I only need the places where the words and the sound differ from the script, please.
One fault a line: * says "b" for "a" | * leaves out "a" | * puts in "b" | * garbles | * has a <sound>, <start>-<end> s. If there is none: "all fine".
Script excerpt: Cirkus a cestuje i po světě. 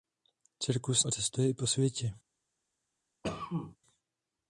* has a cough, 3.2-3.8 s